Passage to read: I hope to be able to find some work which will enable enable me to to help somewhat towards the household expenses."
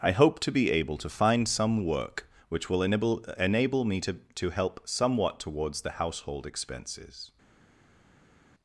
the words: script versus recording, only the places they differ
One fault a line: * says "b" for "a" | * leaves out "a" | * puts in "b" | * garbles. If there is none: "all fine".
all fine